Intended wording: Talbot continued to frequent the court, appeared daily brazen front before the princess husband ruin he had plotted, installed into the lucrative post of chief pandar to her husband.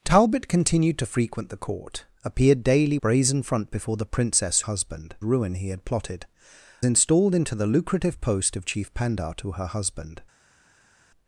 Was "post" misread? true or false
false